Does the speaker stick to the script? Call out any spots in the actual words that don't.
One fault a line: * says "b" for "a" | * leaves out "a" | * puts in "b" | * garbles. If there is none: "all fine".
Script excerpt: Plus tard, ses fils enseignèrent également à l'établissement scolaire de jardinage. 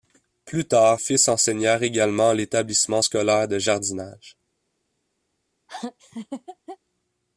* leaves out "ses"